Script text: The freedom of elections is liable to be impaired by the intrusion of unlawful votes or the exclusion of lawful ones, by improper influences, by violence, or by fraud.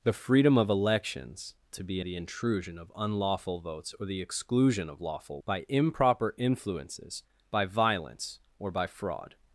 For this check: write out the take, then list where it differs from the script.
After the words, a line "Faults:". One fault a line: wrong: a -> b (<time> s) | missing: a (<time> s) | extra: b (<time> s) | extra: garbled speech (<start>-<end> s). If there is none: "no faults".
The freedom of elections to be the intrusion of unlawful votes or the exclusion of lawful by improper influences, by violence, or by fraud.
Faults:
missing: is liable (1.5 s)
missing: impaired by (2.0 s)
missing: ones (5.4 s)